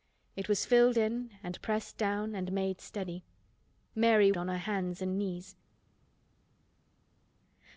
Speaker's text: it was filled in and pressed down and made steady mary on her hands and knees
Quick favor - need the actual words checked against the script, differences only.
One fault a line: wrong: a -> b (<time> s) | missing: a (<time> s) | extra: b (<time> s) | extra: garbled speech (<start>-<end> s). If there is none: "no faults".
no faults